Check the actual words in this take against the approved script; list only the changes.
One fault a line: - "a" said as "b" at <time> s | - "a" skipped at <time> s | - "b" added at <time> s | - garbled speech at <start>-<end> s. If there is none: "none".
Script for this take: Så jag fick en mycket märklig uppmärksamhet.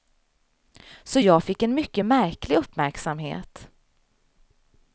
none